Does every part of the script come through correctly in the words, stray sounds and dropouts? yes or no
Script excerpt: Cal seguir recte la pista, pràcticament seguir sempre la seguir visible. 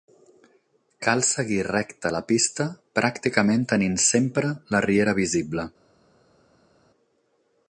no